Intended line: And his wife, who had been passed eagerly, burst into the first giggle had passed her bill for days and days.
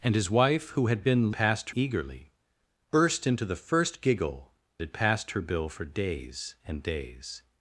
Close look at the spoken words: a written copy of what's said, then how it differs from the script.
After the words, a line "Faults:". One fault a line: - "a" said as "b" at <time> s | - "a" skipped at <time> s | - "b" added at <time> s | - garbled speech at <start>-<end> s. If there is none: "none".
And his wife, who had been passed eagerly, burst into the first giggle had passed her bill for days and days.
Faults:
none